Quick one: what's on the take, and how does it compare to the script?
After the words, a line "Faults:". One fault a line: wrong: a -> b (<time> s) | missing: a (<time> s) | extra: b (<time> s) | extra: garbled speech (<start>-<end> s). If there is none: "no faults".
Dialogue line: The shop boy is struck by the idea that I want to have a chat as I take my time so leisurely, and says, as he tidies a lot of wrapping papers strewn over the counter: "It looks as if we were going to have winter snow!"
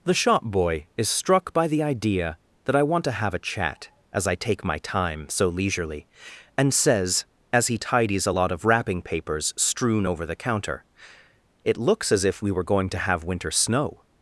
The shop boy is struck by the idea that I want to have a chat as I take my time so leisurely, and says, as he tidies a lot of wrapping papers strewn over the counter: "It looks as if we were going to have winter snow!"
Faults:
no faults